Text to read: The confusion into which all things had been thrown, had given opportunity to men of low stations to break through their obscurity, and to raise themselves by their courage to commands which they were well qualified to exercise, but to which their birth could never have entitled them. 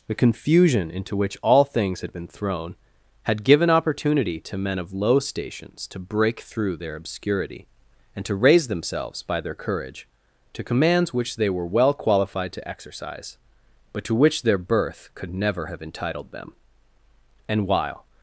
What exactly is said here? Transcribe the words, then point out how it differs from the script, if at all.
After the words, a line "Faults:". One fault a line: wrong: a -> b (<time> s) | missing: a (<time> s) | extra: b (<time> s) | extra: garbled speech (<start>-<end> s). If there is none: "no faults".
The confusion into which all things had been thrown, had given opportunity to men of low stations to break through their obscurity, and to raise themselves by their courage to commands which they were well qualified to exercise, but to which their birth could never have entitled them. And while
Faults:
extra: And while (17.5 s)